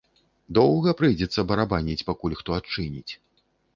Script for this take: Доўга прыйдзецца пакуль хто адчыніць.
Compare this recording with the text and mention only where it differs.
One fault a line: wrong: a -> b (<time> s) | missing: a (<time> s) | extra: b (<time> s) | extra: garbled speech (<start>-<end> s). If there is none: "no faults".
extra: барабаніць (1.5 s)